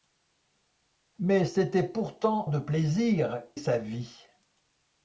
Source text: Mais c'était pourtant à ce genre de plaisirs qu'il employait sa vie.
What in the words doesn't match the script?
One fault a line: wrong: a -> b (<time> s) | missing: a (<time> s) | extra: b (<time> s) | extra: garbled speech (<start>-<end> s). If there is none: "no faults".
missing: à ce genre (2.5 s)
missing: qu'il employait (3.4 s)